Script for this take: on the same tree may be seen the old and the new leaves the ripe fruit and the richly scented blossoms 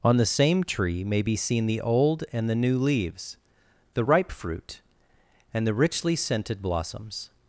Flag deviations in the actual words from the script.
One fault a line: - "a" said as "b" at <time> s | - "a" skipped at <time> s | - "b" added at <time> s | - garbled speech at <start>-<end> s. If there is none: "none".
none